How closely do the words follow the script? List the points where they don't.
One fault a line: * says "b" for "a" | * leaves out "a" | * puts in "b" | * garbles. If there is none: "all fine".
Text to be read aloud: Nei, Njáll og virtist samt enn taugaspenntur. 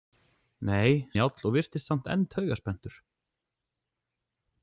all fine